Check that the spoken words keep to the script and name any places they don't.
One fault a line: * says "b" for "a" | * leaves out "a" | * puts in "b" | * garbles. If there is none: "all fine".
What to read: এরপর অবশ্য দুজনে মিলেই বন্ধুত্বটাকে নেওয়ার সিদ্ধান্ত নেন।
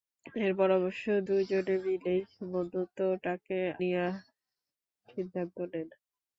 all fine